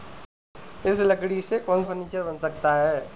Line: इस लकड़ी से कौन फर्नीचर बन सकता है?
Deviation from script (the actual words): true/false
false